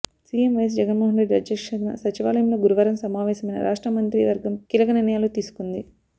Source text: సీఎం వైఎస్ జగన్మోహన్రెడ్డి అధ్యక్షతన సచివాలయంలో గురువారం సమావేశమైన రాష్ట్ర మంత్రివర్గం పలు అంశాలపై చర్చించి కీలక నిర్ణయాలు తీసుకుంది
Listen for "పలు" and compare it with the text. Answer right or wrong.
wrong